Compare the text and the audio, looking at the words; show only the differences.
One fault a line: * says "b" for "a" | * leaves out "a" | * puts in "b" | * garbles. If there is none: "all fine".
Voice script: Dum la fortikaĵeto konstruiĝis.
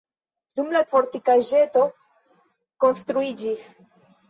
all fine